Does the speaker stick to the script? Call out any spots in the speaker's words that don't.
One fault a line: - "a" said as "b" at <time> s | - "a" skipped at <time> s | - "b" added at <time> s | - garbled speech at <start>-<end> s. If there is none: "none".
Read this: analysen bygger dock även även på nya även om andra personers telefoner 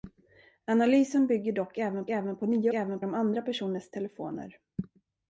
none